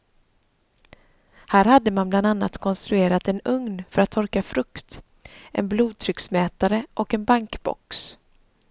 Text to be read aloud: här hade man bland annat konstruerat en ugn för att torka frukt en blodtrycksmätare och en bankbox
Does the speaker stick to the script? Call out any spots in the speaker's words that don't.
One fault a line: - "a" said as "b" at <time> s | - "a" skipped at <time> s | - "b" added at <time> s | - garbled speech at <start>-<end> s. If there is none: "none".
none